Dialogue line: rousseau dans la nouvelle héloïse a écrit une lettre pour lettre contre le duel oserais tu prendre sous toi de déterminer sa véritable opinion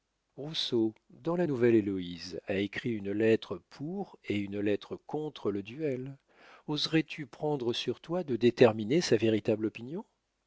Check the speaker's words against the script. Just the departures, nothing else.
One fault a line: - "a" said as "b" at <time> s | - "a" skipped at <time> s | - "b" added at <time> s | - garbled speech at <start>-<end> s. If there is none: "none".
- "et une" added at 4.2 s
- "sous" said as "sur" at 7.7 s